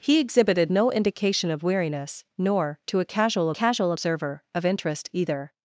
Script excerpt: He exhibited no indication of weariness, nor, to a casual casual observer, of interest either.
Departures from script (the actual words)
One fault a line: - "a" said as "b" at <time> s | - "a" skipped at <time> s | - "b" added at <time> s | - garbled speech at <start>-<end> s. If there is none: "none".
none